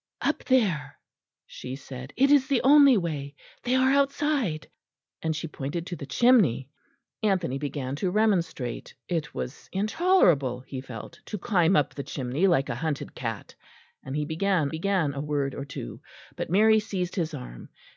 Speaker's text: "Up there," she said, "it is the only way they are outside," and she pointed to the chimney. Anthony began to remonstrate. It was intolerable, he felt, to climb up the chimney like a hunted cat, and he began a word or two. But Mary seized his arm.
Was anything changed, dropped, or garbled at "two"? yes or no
no